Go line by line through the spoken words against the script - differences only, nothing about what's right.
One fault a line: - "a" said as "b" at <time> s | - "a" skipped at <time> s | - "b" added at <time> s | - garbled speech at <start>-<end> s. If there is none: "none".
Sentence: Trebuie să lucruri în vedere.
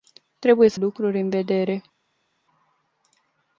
none